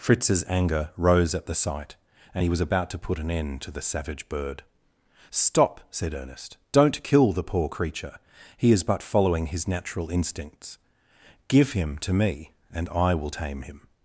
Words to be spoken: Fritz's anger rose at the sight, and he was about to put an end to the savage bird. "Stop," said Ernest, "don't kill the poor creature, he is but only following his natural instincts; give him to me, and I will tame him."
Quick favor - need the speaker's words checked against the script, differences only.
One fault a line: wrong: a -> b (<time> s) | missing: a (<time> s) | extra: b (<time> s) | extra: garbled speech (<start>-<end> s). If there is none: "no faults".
missing: only (9.0 s)